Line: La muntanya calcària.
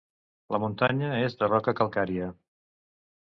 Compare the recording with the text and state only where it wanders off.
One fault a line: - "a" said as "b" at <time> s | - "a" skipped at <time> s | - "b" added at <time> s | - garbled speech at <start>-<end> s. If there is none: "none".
- "és de roca" added at 1.2 s